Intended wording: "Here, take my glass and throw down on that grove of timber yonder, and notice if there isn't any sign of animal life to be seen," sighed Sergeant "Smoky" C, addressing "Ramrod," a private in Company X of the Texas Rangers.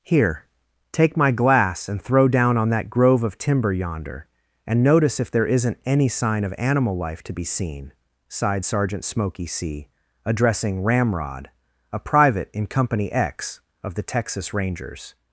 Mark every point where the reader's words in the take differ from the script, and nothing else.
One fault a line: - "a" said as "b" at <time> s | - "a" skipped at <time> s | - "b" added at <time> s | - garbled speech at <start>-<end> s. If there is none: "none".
none